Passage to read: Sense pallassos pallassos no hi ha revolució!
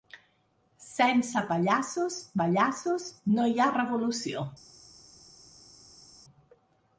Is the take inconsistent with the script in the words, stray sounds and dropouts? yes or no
no